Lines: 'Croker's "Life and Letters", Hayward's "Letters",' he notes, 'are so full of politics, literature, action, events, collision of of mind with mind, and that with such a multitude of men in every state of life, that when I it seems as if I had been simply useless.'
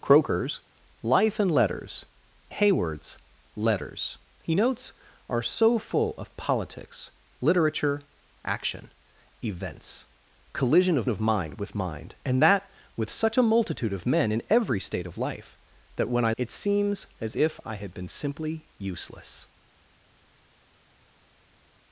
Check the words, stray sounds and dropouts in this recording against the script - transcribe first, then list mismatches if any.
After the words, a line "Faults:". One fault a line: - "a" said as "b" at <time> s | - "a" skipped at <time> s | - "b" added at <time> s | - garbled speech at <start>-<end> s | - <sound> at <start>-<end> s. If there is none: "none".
'Croker's "Life and Letters", Hayward's "Letters",' he notes, 'are so full of politics, literature, action, events, collision of of mind with mind, and that with such a multitude of men in every state of life, that when I it seems as if I had been simply useless.'
Faults:
none